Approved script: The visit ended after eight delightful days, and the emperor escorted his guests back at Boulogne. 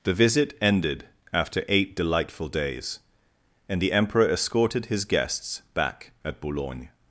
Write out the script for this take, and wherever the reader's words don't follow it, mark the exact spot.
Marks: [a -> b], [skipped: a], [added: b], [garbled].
The visit ended after eight delightful days, and the emperor escorted his guests back at Boulogne.